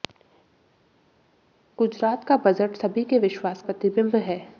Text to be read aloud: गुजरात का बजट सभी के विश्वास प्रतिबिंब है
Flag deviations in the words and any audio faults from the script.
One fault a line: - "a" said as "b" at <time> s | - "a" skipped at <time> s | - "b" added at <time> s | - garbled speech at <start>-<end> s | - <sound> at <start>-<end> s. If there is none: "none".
none